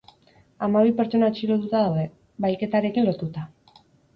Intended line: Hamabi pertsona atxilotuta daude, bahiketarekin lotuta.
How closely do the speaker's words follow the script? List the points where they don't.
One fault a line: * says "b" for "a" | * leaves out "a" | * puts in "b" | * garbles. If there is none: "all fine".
all fine